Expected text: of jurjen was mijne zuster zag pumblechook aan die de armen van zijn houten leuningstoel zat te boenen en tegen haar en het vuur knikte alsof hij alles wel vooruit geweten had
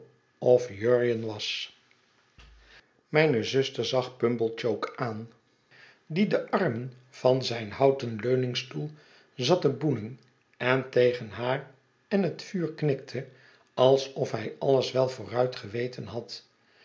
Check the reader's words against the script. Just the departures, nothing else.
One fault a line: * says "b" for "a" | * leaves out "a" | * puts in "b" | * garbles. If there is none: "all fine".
all fine